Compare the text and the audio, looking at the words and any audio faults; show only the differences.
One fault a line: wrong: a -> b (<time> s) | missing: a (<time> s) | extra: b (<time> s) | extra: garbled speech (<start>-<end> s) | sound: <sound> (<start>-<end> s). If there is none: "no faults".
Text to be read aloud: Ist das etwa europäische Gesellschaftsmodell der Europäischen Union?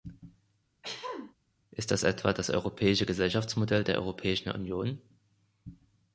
sound: throat clearing (0.8-1.3 s)
extra: das (2.3 s)